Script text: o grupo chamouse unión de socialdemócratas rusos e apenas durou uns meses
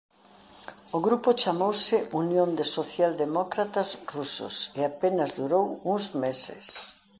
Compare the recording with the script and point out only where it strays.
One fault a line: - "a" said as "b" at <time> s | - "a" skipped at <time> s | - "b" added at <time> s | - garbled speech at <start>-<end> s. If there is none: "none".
none